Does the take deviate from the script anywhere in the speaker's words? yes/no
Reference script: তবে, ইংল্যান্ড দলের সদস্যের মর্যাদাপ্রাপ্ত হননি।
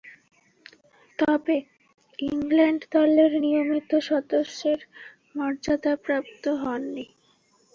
yes